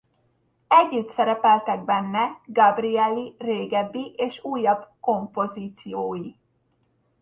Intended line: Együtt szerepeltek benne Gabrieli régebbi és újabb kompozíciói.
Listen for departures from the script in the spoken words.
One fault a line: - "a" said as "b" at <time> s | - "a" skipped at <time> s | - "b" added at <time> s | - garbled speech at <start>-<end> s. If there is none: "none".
none